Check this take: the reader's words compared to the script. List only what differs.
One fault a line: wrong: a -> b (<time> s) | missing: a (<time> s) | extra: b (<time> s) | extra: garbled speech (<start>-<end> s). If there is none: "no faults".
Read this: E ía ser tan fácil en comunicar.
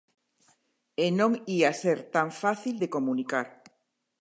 extra: non (1.2 s)
wrong: en -> de (2.8 s)